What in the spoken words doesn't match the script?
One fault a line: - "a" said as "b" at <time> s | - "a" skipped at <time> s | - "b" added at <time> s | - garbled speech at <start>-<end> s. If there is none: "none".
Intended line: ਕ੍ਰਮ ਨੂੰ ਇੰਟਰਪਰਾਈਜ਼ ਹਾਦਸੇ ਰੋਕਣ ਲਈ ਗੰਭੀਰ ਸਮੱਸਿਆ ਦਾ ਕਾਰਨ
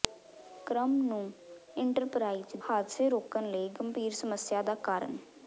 none